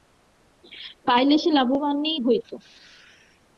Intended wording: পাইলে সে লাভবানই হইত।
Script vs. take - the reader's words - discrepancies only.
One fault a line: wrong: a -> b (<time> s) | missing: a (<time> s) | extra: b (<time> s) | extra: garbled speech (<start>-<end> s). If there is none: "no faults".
no faults